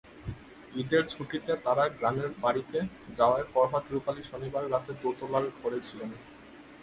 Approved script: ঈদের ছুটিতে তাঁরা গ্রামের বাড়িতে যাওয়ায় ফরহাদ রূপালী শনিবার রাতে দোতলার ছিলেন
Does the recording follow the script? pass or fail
fail